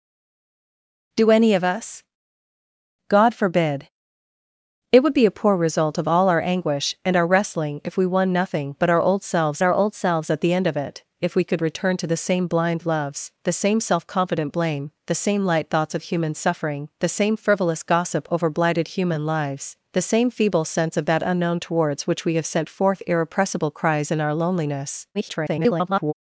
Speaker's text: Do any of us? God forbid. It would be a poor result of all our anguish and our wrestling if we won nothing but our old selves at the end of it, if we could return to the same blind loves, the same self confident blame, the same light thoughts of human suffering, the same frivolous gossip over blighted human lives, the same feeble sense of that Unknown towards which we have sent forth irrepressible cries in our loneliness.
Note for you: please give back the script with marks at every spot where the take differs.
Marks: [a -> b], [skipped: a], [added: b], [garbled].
Do any of us? God forbid. It would be a poor result of all our anguish and our wrestling if we won nothing but our old selves [added: our old selves] at the end of it, if we could return to the same blind loves, the same self confident blame, the same light thoughts of human suffering, the same frivolous gossip over blighted human lives, the same feeble sense of that Unknown towards which we have sent forth irrepressible cries in our loneliness. [garbled]